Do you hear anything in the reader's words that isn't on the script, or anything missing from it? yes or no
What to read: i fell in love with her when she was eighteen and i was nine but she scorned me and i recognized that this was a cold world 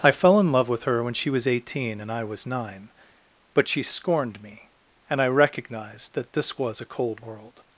no